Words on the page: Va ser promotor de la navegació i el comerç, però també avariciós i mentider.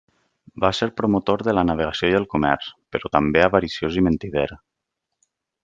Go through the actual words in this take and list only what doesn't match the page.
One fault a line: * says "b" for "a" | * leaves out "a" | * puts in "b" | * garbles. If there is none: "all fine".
all fine